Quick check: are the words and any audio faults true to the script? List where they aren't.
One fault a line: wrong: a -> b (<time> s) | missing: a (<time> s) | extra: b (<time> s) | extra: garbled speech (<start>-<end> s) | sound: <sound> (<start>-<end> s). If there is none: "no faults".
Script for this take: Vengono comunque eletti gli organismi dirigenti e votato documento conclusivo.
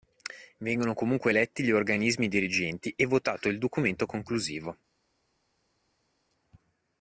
extra: il (3.5 s)